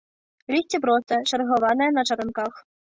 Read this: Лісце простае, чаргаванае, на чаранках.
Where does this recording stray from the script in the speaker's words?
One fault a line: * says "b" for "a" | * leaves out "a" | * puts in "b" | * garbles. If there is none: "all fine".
all fine